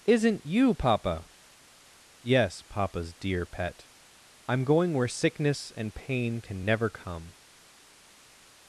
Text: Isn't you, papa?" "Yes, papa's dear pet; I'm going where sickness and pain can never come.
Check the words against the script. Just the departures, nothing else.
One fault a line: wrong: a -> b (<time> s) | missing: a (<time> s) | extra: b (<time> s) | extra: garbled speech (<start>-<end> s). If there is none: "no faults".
no faults